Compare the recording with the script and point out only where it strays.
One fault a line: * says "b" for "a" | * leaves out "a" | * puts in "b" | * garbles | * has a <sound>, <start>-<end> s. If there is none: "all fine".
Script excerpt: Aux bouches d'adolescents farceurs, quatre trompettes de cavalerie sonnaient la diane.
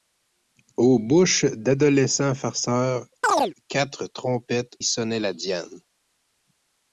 * has a chirp, 3.2-3.5 s
* leaves out "de cavalerie"